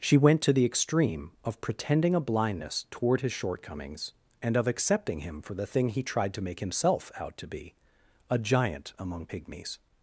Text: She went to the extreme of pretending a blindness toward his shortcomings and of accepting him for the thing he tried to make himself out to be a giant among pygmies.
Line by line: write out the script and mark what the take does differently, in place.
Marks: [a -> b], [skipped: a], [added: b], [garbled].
She went to the extreme of pretending a blindness toward his shortcomings and of accepting him for the thing he tried to make himself out to be a giant among pygmies.